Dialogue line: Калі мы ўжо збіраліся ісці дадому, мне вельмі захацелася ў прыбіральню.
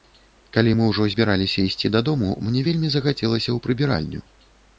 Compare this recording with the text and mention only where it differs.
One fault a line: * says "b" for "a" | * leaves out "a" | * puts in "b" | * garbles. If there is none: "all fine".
all fine